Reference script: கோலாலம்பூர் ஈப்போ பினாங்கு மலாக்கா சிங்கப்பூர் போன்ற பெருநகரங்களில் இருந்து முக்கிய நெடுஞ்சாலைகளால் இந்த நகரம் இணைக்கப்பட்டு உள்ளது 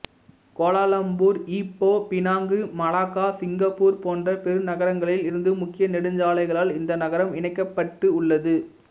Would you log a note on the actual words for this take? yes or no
no